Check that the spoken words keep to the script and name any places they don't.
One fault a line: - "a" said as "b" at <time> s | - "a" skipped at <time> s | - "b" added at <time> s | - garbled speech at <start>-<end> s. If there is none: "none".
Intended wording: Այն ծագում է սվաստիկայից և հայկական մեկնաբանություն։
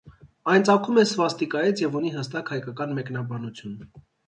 - "ունի հստակ" added at 2.0 s